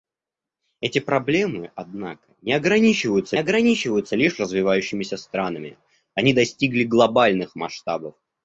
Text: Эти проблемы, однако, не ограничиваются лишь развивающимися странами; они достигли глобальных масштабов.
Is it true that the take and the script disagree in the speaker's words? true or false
true